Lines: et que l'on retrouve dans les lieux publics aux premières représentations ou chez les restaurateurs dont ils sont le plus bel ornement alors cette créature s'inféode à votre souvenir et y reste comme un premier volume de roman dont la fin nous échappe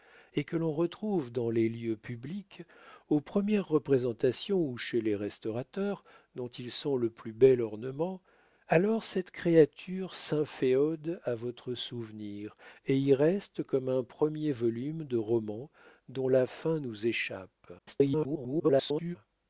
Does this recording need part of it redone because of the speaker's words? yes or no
yes